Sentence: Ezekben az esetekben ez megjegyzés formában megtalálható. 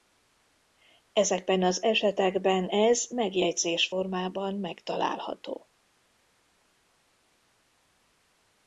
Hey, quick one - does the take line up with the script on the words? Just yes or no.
yes